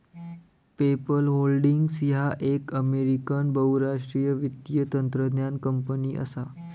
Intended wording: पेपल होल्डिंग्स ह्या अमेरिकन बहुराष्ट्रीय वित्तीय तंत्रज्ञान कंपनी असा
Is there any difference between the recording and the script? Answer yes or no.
yes